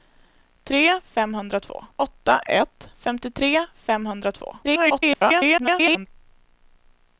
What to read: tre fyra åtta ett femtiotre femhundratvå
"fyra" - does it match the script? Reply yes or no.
no